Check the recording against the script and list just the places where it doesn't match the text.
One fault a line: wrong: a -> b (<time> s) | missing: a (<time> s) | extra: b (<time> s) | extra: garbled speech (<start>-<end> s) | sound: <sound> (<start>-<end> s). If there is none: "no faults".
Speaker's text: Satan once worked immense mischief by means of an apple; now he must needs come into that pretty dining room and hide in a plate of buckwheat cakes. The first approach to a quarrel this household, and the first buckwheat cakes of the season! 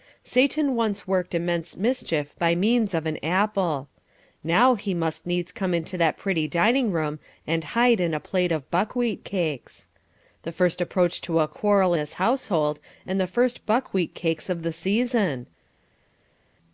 no faults